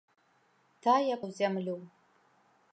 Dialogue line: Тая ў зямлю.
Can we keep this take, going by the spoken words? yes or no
yes